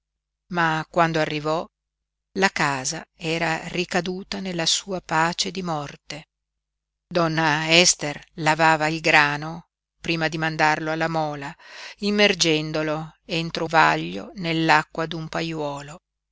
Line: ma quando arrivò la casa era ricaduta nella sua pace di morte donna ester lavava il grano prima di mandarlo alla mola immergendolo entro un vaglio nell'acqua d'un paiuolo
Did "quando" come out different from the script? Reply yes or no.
no